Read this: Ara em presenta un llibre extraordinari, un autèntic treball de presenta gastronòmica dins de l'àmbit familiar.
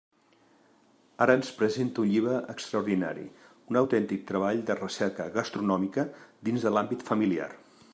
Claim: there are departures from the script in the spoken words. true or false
true